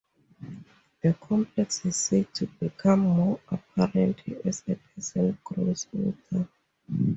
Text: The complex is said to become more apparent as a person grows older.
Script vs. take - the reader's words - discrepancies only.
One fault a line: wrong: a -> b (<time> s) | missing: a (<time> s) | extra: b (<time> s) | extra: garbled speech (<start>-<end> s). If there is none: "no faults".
no faults